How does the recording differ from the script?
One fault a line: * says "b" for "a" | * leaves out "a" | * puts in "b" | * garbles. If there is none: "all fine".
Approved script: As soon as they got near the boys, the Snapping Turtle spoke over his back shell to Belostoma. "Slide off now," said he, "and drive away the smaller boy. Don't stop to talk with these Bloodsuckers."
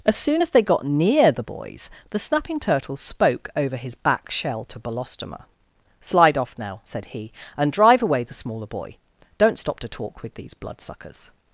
all fine